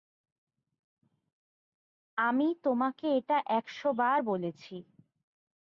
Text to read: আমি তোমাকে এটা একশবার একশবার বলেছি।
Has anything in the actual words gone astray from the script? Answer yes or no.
yes